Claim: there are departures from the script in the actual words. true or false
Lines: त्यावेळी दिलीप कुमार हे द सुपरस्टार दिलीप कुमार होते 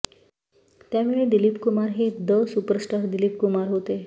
false